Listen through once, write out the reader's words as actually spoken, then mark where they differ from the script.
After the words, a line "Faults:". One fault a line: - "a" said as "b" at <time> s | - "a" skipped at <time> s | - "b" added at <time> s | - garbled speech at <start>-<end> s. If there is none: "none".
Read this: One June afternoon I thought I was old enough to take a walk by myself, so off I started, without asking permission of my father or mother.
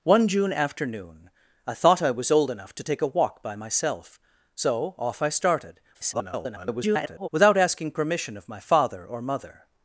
One June afternoon I thought I was old enough to take a walk by myself, so off I started, [garbled] without asking permission of my father or mother.
Faults:
- garbled speech at 5.9-7.3 s